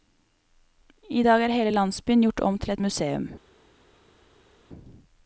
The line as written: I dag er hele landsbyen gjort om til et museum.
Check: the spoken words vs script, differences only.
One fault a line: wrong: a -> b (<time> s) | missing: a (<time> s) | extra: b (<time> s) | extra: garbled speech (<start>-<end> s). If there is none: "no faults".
no faults